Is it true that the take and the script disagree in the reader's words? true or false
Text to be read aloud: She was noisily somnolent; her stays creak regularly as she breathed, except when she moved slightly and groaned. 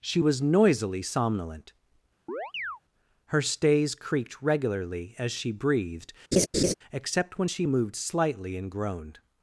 true